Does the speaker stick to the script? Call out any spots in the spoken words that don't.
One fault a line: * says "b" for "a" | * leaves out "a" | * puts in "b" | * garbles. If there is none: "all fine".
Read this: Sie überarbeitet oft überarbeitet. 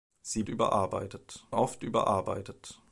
all fine